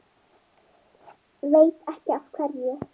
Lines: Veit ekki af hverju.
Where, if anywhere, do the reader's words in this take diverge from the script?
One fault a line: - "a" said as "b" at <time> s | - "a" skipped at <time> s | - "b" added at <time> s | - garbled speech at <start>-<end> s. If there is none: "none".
none